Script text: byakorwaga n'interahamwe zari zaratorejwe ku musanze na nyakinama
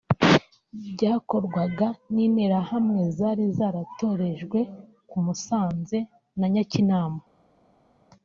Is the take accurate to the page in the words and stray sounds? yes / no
yes